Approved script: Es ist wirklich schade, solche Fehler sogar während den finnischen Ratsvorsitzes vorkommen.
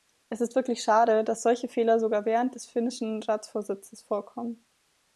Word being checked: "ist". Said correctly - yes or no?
yes